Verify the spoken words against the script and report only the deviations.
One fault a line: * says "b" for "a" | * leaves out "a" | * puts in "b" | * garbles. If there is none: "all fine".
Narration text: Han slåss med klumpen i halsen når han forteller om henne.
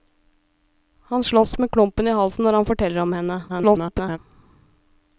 * garbles